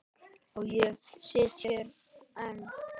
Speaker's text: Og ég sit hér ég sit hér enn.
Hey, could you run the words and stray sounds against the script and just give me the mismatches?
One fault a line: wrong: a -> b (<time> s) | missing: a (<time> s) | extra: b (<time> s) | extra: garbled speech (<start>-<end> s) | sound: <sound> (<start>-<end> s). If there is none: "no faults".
missing: ég sit hér (1.9 s)